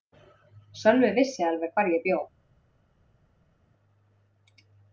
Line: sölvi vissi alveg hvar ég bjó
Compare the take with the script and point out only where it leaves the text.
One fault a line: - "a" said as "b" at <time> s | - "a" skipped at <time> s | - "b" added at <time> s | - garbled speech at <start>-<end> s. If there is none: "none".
none